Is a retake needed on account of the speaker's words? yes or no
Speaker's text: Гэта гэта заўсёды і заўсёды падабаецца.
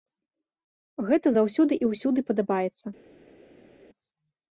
yes